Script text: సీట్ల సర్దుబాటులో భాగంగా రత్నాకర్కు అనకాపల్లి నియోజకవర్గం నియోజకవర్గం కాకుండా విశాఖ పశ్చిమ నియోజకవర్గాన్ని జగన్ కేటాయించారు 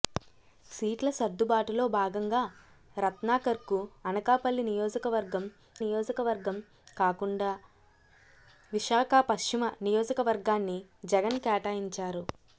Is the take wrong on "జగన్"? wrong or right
right